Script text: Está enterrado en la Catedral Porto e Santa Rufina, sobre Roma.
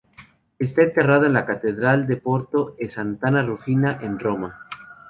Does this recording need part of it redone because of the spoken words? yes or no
yes